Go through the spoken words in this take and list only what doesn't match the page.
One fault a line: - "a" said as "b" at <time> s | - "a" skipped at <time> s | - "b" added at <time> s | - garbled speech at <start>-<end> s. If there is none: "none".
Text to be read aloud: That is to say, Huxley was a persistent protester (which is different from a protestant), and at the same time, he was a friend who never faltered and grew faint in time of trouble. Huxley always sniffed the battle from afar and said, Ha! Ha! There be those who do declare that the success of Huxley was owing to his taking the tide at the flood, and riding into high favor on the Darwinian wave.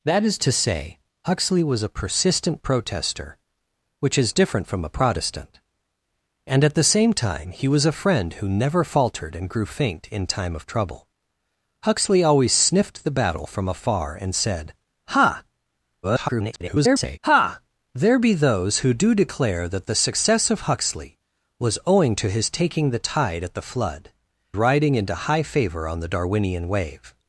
- garbled speech at 16.0-17.2 s
- "and" skipped at 24.1 s